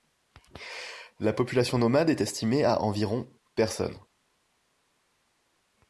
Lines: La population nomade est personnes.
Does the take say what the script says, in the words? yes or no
no